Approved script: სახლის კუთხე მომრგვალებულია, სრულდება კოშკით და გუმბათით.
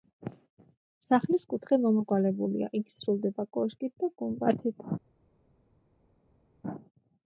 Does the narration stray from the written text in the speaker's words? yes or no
yes